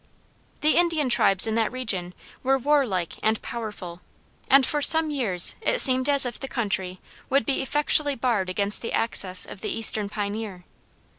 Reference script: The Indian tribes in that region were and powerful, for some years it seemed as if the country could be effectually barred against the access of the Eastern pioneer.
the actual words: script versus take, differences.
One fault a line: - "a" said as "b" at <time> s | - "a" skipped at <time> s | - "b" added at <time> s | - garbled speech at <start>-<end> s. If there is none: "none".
- "warlike" added at 2.6 s
- "and" added at 4.5 s
- "could" said as "would" at 7.3 s